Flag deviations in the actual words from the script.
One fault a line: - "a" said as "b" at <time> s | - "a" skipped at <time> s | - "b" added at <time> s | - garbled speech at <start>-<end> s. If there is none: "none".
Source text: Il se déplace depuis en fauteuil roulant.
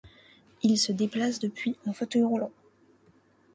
none